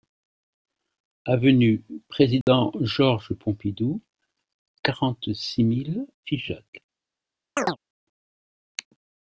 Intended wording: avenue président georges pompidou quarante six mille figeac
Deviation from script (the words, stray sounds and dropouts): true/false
true